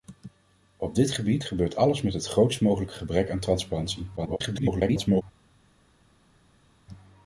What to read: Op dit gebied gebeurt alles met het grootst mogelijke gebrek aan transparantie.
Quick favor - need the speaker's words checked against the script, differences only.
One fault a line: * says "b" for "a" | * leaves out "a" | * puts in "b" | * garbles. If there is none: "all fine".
* garbles